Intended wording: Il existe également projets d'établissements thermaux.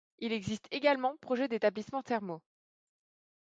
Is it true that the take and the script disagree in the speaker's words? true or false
false